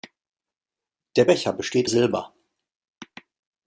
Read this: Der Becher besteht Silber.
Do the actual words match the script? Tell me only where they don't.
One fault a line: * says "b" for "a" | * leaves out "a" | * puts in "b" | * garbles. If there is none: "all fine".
all fine